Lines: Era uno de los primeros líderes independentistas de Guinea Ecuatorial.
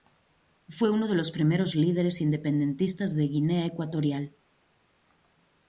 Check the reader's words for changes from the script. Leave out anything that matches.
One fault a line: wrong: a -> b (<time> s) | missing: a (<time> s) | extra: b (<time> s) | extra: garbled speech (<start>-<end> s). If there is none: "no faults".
wrong: Era -> Fue (0.7 s)